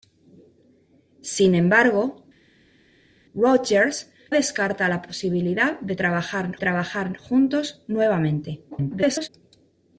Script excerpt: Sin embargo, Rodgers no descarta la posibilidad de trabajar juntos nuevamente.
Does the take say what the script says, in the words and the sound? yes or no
no